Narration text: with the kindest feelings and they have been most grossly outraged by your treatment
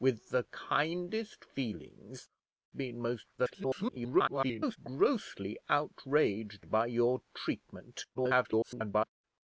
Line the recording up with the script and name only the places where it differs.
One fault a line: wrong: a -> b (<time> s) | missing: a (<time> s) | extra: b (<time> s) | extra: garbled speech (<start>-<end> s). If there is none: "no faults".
missing: and they have (2.3 s)
extra: garbled speech (3.4-4.8 s)
extra: garbled speech (8.1-9.1 s)